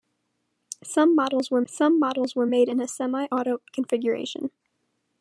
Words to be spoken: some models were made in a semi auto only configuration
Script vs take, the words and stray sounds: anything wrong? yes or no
yes